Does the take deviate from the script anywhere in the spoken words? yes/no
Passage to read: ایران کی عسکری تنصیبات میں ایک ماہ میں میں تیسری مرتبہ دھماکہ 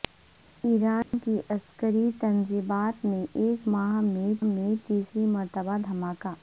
no